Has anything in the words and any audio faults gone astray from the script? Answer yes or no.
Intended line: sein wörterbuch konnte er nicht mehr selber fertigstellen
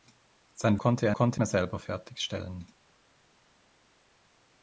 yes